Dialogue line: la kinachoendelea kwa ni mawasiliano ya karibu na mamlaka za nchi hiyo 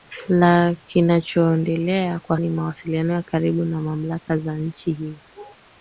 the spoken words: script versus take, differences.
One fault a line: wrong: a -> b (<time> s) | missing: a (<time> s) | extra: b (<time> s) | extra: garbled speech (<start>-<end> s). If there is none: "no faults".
no faults